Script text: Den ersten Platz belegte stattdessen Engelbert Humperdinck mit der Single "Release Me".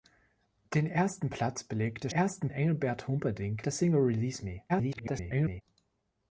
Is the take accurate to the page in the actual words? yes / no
no